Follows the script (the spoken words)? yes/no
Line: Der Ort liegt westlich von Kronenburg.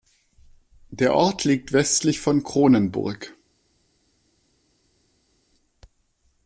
yes